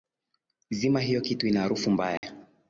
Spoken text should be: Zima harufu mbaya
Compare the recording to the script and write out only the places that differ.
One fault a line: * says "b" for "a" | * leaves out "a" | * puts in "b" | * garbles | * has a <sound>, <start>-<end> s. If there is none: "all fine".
* puts in "hiyo kitu ina"
* has a dropout, 2.2-2.2 s